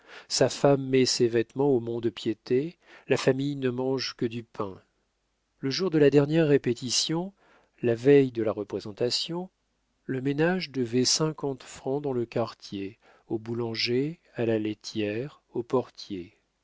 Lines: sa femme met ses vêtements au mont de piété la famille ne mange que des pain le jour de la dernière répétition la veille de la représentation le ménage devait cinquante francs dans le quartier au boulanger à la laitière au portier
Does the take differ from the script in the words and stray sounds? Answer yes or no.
yes